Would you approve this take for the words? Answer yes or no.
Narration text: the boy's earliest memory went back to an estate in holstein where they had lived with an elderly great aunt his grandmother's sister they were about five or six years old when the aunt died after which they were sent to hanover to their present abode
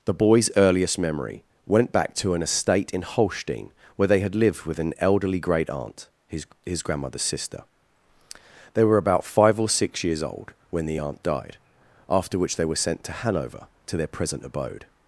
no